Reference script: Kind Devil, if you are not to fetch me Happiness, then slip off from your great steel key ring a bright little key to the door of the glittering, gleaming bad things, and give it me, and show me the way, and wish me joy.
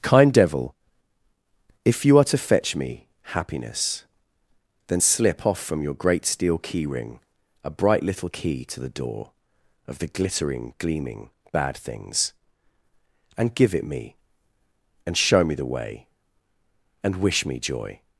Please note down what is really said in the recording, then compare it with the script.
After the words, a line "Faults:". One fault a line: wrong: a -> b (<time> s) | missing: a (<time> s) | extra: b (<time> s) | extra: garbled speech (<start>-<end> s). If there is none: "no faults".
Kind Devil, if you are to fetch me Happiness, then slip off from your great steel key ring a bright little key to the door of the glittering, gleaming bad things, and give it me, and show me the way, and wish me joy.
Faults:
missing: not (2.2 s)